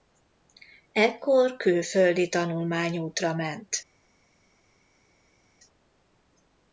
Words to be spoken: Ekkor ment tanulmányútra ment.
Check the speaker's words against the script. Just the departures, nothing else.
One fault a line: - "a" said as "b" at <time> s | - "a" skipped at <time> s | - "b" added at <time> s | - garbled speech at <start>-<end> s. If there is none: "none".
- "ment" said as "külföldi" at 1.6 s